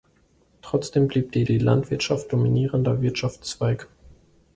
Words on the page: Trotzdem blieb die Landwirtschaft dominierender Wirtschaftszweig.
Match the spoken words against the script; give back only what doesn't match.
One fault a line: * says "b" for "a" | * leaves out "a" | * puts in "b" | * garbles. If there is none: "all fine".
* puts in "die"